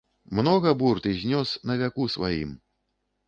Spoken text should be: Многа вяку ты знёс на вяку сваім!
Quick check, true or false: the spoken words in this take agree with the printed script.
false